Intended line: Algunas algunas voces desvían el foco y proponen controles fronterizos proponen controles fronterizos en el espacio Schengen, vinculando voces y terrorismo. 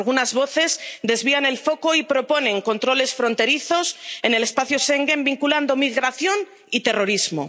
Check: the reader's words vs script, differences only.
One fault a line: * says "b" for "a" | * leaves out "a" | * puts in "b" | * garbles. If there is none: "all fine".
* leaves out "algunas"
* leaves out "proponen controles fronterizos"
* says "migración" for "voces"